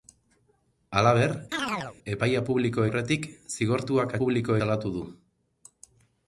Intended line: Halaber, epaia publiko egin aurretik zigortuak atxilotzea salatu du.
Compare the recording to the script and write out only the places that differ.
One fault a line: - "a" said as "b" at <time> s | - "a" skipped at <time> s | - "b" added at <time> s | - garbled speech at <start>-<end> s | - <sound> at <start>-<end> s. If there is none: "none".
- chirp at 1.5-2.0 s
- "egin" skipped at 2.9 s
- "atxilotzea" said as "publiko" at 4.2 s